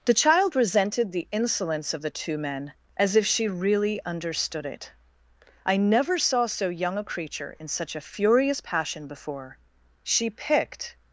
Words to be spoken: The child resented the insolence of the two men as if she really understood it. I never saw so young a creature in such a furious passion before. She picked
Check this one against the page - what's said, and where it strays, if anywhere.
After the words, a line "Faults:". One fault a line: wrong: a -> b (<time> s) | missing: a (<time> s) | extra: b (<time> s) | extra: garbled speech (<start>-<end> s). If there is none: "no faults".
The child resented the insolence of the two men as if she really understood it. I never saw so young a creature in such a furious passion before. She picked
Faults:
no faults